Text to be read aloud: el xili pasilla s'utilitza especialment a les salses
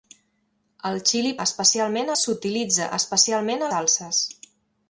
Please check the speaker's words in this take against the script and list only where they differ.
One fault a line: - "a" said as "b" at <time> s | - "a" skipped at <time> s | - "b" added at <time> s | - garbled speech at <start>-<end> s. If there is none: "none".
- "pasilla" said as "especialment" at 1.5 s
- "les" skipped at 3.7 s